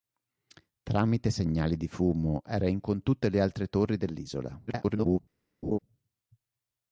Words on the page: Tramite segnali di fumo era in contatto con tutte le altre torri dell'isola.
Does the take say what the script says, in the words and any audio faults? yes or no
no